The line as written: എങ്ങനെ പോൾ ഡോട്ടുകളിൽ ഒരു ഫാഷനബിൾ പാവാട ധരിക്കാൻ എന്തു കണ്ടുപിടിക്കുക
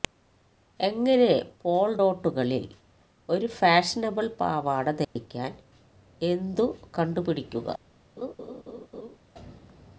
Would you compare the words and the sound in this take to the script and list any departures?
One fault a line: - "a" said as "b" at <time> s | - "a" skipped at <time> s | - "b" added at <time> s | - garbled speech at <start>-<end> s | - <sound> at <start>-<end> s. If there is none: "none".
- dropout at 5.0-5.2 s
- laugh at 8.2-9.2 s